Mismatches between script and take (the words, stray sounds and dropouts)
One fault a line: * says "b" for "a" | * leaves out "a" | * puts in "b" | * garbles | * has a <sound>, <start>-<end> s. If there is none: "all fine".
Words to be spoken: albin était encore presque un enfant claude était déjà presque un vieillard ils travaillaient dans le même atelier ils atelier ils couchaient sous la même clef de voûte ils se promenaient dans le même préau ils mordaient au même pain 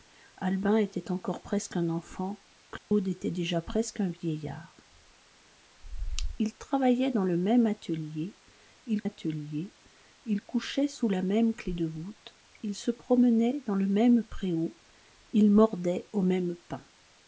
* has a dropout, 2.8-2.9 s